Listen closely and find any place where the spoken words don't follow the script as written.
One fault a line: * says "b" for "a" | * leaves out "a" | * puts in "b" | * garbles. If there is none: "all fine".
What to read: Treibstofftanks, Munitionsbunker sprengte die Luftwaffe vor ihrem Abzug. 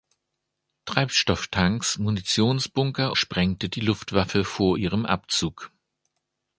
all fine